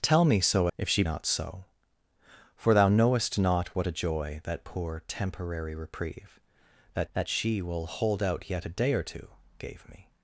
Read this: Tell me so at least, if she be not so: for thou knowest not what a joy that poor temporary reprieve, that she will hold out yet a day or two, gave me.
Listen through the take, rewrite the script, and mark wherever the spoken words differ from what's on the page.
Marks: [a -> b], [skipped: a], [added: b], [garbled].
Tell me so [skipped: at least,] if she [skipped: be] not so: for thou knowest not what a joy that poor temporary reprieve, that [added: that] she will hold out yet a day or two, gave me.